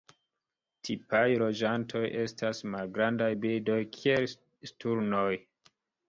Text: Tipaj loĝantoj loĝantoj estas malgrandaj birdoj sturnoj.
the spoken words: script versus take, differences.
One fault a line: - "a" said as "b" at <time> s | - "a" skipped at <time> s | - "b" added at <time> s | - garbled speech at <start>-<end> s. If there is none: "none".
- "loĝantoj" skipped at 2.0 s
- "kiel" added at 4.0 s